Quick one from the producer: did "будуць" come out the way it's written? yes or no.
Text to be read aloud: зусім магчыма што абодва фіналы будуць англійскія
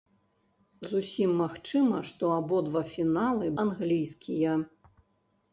no